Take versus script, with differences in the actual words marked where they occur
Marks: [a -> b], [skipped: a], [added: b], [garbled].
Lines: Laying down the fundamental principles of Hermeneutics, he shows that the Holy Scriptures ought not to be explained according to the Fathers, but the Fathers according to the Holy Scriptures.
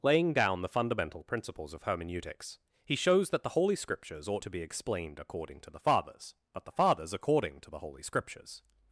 Laying down the fundamental principles of Hermeneutics, he shows that the Holy Scriptures ought [skipped: not] to be explained according to the Fathers, but the Fathers according to the Holy Scriptures.